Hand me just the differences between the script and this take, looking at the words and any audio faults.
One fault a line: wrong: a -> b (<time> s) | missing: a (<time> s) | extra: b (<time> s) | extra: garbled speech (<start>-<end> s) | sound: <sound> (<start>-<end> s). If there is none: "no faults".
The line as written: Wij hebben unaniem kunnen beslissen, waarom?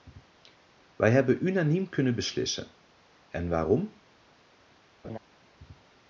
extra: en (3.3 s)
sound: laugh (5.0-5.2 s)